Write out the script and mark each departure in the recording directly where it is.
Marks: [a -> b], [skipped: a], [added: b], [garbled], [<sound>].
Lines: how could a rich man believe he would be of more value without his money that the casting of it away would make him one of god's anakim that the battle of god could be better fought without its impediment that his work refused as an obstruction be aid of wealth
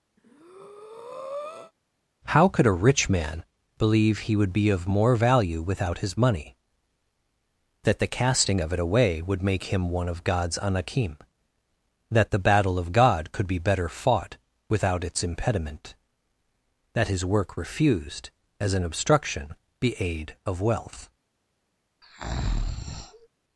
[breath] how could a rich man believe he would be of more value without his money that the casting of it away would make him one of god's anakim that the battle of god could be better fought without its impediment that his work refused as an obstruction be aid of wealth [breath]